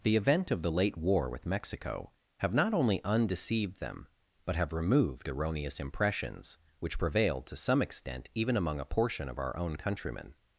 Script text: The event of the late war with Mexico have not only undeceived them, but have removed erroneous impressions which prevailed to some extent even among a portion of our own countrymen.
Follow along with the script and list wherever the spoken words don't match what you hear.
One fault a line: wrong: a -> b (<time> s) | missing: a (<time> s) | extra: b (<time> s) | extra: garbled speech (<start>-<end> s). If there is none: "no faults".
no faults